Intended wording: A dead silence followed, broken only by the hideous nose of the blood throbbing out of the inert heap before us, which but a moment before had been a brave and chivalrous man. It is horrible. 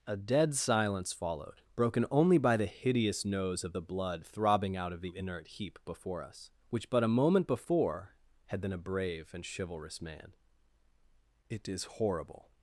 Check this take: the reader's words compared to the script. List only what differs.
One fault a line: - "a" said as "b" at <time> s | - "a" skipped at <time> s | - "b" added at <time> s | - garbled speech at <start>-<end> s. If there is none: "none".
none